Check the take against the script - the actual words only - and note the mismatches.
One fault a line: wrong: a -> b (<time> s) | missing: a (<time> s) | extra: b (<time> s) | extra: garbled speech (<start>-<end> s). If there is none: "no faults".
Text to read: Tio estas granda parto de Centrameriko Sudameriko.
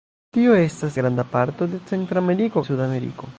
no faults